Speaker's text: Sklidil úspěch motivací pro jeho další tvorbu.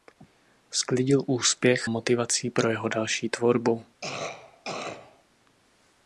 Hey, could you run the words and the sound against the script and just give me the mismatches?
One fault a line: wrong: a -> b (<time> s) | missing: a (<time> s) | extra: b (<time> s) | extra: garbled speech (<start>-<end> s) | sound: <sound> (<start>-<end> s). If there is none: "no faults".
sound: cough (4.0-5.2 s)